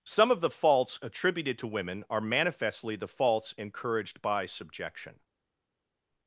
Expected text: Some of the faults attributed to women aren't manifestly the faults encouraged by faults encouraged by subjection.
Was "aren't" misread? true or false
true